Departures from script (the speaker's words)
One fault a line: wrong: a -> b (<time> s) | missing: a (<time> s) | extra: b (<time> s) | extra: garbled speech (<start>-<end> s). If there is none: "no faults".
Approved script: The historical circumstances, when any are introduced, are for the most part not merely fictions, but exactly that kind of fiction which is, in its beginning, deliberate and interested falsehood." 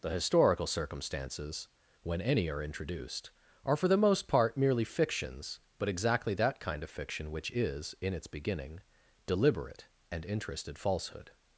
missing: not (4.6 s)